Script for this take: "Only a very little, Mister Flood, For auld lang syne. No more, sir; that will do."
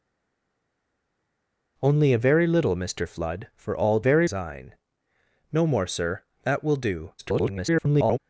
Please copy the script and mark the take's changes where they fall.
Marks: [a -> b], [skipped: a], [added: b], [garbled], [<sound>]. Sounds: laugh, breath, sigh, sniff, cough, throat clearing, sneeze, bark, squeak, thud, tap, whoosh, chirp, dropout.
"Only a very little, Mister Flood, For auld [lang -> very] syne. No more, sir; that will do." [garbled]